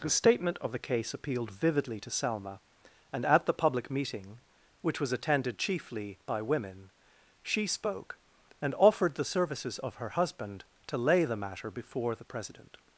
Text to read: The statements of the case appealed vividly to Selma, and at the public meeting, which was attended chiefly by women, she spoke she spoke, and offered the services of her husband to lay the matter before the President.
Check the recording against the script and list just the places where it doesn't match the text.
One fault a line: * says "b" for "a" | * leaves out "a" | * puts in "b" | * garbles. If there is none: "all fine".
* says "statement" for "statements"
* leaves out "she spoke"